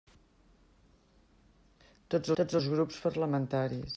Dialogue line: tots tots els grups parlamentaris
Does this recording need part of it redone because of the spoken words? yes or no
no